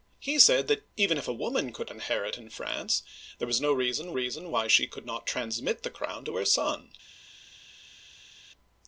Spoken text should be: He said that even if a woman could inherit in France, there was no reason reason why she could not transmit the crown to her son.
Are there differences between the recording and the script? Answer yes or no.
no